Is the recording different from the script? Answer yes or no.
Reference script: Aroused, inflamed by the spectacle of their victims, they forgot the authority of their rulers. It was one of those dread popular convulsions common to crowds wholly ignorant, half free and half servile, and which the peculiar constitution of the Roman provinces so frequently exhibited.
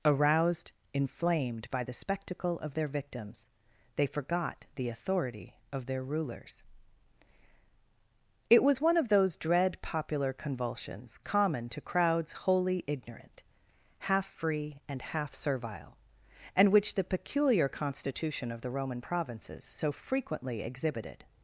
no